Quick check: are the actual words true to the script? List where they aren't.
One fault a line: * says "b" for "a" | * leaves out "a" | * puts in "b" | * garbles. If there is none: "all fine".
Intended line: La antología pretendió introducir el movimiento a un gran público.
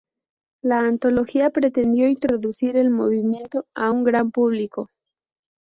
all fine